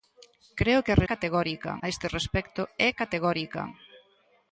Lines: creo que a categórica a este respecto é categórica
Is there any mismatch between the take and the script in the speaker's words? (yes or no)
no